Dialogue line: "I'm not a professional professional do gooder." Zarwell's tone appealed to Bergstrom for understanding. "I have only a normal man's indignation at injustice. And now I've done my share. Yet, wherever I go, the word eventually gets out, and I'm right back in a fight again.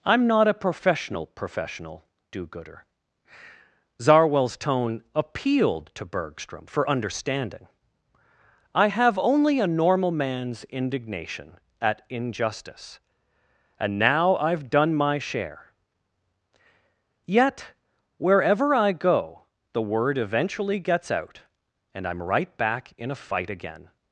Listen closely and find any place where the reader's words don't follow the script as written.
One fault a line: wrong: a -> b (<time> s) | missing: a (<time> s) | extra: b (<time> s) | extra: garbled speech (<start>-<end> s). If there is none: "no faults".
no faults